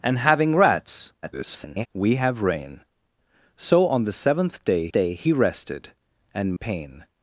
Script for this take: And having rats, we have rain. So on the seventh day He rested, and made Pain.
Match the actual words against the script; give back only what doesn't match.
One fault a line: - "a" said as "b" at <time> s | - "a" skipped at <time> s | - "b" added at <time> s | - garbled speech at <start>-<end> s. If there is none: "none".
- garbled speech at 1.2-1.9 s
- "day" added at 4.9 s
- "made" skipped at 6.6 s